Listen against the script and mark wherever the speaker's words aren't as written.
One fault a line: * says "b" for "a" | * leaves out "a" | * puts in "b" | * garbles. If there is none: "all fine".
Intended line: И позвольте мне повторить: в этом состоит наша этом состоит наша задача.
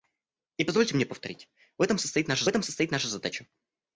all fine